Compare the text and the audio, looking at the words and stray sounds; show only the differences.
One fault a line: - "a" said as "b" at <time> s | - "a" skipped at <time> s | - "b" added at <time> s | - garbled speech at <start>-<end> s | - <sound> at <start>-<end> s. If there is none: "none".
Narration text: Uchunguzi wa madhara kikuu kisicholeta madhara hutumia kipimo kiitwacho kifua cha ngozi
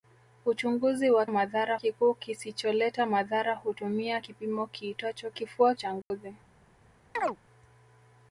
- dropout at 6.0-6.1 s
- chirp at 7.2-7.4 s